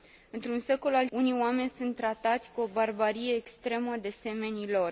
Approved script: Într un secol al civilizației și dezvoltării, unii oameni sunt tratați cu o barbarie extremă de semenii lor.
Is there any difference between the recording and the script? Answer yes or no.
yes